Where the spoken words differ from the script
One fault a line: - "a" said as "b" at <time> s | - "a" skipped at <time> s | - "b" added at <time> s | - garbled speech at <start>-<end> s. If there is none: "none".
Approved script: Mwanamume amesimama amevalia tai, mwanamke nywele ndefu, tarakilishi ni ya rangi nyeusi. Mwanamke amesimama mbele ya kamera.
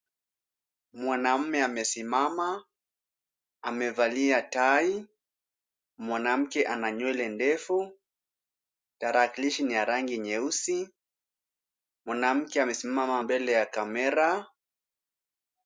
- "ana" added at 6.7 s